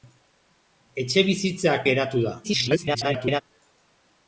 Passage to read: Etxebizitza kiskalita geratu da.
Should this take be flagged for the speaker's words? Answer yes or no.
yes